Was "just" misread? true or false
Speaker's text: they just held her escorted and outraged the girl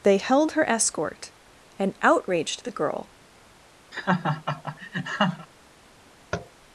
true